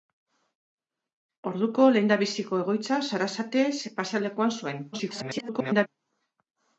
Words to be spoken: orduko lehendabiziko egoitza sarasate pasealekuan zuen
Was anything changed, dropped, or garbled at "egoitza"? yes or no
no